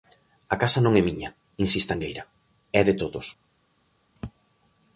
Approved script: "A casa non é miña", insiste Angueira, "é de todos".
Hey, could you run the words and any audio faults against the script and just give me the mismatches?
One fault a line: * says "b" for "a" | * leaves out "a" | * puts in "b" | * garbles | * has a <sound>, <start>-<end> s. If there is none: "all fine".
all fine